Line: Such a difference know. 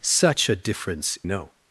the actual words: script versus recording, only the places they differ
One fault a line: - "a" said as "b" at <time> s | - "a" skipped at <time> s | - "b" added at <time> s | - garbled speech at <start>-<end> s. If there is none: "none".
none